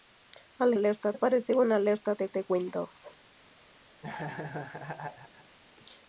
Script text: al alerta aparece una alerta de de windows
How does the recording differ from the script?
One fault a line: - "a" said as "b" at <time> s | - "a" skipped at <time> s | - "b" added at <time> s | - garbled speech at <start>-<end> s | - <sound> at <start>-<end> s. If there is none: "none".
- laugh at 4.0-5.6 s